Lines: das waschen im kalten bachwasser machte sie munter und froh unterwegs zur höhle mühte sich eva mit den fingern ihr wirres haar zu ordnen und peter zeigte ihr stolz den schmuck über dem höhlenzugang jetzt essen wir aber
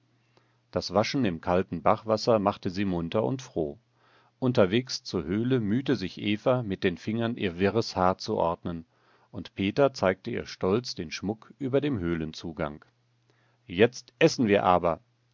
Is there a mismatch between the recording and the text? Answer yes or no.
no